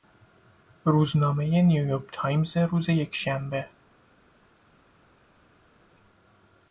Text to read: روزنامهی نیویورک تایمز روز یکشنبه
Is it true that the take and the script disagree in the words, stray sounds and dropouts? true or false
false